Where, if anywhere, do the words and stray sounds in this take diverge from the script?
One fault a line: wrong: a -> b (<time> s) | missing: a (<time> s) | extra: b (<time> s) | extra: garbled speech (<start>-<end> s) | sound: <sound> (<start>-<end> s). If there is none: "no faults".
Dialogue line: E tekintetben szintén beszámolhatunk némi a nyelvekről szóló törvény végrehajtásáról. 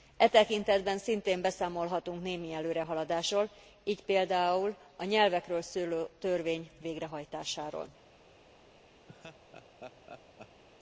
extra: előrehaladásról így például (2.5 s)
sound: laugh (9.1-10.6 s)